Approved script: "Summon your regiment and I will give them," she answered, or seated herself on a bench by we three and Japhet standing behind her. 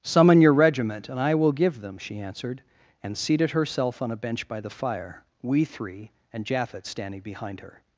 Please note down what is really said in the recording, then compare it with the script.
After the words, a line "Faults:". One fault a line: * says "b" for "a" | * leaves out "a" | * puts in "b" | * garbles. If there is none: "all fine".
"Summon your regiment and I will give them," she answered, and seated herself on a bench by the fire, we three and Japhet standing behind her.
Faults:
* says "and" for "or"
* puts in "the fire"